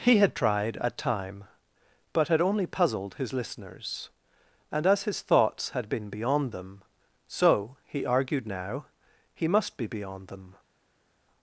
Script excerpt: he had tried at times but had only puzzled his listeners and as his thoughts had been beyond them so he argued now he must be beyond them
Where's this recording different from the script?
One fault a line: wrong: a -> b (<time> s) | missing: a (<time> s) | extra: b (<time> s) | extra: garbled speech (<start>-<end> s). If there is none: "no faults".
wrong: times -> time (1.0 s)